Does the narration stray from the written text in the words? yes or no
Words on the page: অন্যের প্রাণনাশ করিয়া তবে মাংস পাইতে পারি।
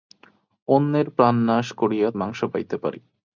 yes